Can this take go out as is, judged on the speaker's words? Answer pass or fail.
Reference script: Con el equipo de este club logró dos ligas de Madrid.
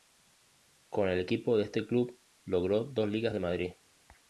pass